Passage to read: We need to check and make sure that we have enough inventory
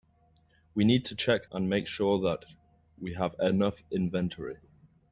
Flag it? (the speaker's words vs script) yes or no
no